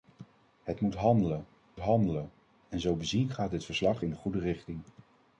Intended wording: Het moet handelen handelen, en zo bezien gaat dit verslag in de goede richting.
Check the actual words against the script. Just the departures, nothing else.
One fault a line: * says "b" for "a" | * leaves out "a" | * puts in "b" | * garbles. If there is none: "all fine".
all fine